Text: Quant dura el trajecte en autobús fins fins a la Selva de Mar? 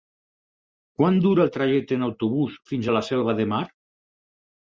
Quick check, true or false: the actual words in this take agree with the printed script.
false